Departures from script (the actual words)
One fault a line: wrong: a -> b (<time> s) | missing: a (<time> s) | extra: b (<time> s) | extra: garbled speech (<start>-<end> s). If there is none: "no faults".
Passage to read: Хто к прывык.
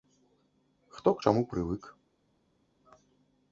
extra: чаму (1.2 s)